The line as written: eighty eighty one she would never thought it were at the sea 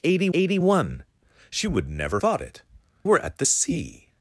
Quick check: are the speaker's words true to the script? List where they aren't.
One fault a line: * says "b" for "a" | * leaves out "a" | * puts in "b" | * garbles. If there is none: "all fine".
all fine